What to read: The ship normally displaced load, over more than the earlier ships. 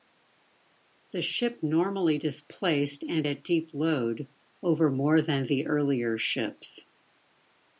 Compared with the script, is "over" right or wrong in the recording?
right